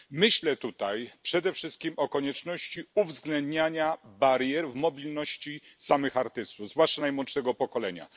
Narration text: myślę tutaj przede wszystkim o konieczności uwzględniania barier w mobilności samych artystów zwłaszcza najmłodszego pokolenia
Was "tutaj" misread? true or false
false